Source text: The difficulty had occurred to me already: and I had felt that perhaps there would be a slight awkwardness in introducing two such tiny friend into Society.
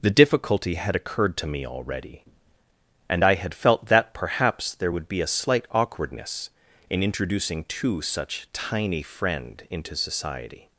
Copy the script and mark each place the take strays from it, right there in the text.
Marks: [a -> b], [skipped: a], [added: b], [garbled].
The difficulty had occurred to me already: and I had felt that perhaps there would be a slight awkwardness in introducing two such tiny friend into Society.